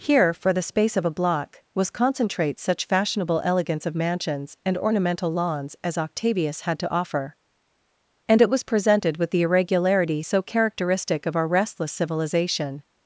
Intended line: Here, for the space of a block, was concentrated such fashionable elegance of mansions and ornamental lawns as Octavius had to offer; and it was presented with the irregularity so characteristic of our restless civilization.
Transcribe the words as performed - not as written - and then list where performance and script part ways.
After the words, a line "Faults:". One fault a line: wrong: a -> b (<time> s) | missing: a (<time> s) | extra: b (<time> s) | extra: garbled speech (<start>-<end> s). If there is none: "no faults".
Here, for the space of a block, was concentrate such fashionable elegance of mansions and ornamental lawns as Octavius had to offer; and it was presented with the irregularity so characteristic of our restless civilization.
Faults:
wrong: concentrated -> concentrate (1.9 s)